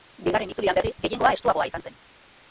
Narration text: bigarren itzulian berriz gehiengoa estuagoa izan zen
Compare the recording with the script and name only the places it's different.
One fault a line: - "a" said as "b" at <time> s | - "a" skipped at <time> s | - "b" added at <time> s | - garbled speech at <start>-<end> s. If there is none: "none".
none